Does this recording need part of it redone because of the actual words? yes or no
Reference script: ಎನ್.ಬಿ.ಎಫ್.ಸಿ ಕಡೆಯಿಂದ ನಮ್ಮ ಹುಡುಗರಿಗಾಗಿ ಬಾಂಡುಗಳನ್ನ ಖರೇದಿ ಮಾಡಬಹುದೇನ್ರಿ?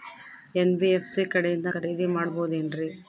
yes